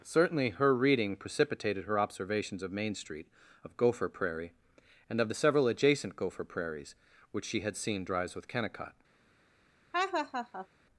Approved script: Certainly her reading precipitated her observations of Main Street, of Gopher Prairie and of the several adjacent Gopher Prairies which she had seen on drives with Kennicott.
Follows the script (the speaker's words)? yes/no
no